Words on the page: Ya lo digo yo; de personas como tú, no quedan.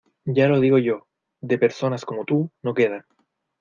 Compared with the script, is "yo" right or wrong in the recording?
right